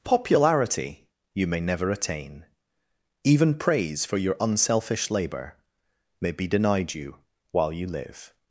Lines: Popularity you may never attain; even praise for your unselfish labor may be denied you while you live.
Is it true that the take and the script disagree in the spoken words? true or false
false